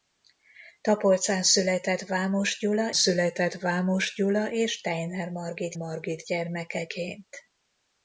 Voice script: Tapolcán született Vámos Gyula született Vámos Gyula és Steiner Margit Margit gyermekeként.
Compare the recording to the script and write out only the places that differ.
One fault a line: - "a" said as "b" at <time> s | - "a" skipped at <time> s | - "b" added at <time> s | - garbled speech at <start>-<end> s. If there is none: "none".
none